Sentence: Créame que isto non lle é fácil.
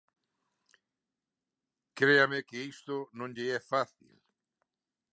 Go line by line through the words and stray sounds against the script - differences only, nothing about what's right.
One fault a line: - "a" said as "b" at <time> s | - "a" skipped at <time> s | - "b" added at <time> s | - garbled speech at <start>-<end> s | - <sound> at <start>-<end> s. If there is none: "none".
none